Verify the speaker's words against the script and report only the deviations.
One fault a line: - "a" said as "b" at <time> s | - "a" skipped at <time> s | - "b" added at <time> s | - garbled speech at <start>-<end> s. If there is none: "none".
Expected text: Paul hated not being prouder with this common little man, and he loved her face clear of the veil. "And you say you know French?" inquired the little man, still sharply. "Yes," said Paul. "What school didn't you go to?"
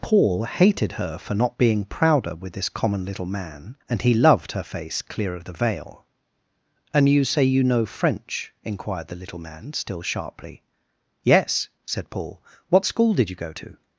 - "her for" added at 0.9 s
- "didn't" said as "did" at 13.1 s